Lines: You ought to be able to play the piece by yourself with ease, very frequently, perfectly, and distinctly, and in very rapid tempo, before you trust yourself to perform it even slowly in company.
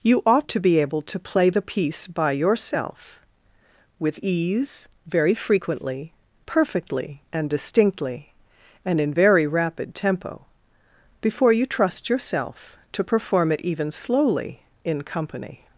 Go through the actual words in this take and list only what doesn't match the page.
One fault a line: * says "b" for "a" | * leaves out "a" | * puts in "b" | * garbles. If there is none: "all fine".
all fine